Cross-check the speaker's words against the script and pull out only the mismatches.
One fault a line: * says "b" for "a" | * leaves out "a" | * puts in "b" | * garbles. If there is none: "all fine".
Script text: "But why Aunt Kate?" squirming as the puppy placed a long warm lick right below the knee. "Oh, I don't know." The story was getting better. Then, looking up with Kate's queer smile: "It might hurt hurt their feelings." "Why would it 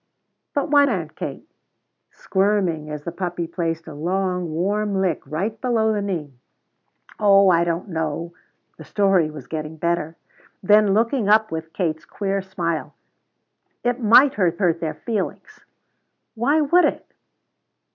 all fine